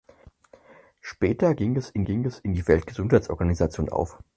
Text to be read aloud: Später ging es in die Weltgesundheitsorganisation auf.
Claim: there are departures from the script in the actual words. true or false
true